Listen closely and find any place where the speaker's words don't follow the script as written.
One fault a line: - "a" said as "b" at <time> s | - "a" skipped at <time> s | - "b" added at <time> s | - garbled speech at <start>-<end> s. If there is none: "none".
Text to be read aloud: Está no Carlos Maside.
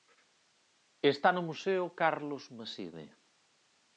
- "museo" added at 1.5 s